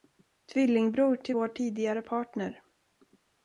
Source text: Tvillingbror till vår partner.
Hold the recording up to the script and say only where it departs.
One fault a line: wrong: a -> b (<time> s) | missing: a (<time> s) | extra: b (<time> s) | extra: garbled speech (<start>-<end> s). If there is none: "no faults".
extra: tidigare (1.5 s)